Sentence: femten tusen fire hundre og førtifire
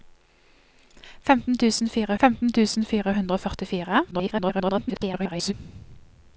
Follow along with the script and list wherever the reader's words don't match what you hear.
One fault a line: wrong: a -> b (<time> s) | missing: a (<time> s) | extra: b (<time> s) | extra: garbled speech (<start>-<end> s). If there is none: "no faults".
extra: femten tusen fire (2.2 s)
extra: garbled speech (4.1-5.5 s)